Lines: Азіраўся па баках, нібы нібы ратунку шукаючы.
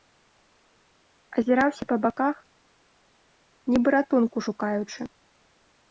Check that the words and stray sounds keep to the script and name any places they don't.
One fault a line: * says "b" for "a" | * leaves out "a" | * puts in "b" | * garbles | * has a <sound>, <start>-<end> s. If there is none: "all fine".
* leaves out "нібы"